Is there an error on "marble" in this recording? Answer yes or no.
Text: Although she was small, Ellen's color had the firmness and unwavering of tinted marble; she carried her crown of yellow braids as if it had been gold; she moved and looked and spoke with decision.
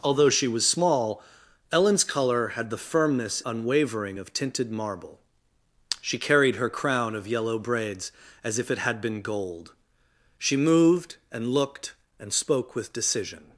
no